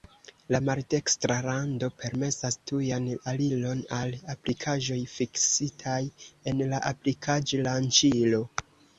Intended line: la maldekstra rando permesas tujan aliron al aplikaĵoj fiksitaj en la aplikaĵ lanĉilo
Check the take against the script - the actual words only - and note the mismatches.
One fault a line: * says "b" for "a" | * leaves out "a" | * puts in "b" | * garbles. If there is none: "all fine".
all fine